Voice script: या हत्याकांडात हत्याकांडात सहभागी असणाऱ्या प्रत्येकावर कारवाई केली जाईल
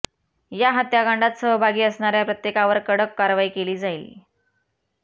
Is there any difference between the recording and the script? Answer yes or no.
yes